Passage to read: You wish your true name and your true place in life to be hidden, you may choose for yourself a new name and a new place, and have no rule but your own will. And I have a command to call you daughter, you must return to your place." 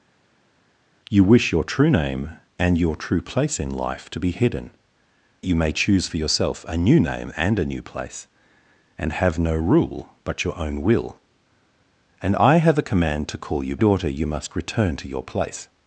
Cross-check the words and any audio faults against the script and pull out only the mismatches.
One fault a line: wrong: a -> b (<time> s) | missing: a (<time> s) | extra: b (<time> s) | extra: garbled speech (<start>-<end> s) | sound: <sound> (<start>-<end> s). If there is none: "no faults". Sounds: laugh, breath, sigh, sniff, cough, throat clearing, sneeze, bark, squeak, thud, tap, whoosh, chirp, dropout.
no faults